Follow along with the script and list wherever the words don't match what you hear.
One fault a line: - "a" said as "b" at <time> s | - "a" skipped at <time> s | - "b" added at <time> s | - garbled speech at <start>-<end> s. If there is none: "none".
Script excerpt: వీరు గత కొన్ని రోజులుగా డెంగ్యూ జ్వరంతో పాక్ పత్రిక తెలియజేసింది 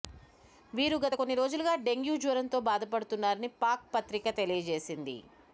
- "బాధపడుతున్నారని" added at 2.7 s